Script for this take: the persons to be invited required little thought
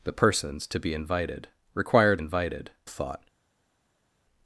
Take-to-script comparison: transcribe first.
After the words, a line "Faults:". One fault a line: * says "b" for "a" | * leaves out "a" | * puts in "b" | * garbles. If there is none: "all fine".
the persons to be invited required invited thought
Faults:
* says "invited" for "little"